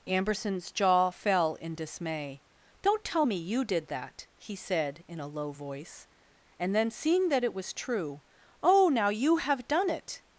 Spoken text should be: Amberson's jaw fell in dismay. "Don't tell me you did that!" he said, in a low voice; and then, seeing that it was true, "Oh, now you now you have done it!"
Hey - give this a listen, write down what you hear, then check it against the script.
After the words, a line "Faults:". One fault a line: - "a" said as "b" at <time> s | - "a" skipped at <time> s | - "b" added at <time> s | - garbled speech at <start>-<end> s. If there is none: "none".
Amberson's jaw fell in dismay. "Don't tell me you did that!" he said, in a low voice; and then, seeing that it was true, "Oh, now you have done it!"
Faults:
- "now you" skipped at 9.4 s